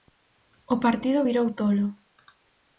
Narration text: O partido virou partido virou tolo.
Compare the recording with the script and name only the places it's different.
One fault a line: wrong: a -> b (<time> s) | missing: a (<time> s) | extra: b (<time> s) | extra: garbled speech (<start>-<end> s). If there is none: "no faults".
missing: partido virou (1.5 s)